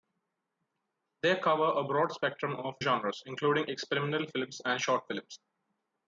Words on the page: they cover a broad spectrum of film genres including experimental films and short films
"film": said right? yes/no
no